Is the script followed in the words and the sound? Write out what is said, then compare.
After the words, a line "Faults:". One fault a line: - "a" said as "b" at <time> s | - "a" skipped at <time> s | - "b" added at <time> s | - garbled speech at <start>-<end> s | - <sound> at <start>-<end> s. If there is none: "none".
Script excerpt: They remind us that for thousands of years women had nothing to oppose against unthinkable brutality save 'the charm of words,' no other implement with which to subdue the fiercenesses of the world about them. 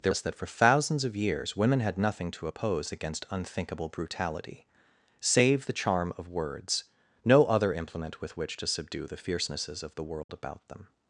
They us that for thousands of years women had nothing to oppose against unthinkable brutality save 'the charm of words,' no other implement with which to subdue the fiercenesses of the world about them.
Faults:
- "remind" skipped at 0.1 s
- dropout at 10.2-10.3 s